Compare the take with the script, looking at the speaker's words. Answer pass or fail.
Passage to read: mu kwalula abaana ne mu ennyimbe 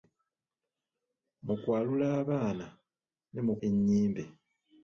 pass